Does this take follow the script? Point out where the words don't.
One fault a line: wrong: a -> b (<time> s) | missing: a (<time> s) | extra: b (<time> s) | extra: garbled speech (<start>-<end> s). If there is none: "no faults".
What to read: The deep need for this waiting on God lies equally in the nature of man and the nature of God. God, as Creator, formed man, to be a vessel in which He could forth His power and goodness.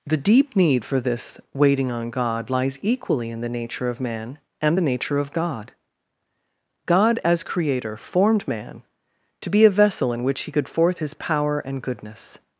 no faults